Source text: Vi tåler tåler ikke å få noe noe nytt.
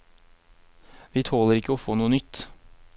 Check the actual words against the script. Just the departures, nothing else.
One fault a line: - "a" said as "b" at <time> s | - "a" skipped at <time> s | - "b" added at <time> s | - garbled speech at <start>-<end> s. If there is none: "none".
- "tåler" skipped at 1.6 s
- "noe" skipped at 2.1 s